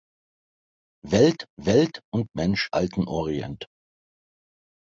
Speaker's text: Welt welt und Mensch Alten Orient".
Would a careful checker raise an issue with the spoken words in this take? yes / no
no